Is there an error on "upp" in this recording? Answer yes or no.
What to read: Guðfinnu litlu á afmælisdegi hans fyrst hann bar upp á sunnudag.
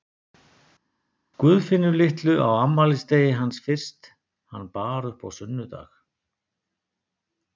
no